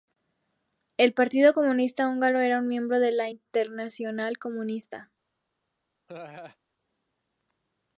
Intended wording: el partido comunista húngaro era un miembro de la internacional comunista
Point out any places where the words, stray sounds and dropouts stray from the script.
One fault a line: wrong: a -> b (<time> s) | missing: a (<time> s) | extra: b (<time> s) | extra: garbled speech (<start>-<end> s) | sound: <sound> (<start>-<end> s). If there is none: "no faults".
sound: laugh (6.1-6.6 s)